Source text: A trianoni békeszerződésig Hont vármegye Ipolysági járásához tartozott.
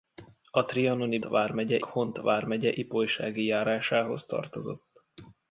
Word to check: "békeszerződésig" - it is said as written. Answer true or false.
false